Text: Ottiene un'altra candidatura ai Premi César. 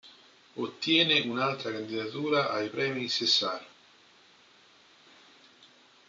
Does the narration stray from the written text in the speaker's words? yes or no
no